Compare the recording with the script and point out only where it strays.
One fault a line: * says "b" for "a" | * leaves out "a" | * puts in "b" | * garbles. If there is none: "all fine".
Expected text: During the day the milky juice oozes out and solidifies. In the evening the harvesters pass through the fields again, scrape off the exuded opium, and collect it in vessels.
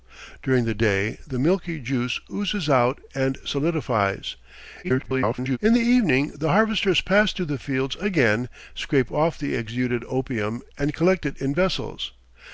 * garbles